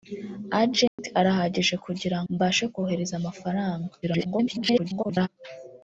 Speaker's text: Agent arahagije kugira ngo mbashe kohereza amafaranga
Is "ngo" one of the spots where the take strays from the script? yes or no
yes